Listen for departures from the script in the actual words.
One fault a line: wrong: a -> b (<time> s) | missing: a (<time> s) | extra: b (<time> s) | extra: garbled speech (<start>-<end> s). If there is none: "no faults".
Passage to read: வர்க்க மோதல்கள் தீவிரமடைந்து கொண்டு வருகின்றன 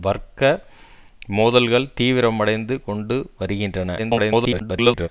extra: garbled speech (4.0-5.1 s)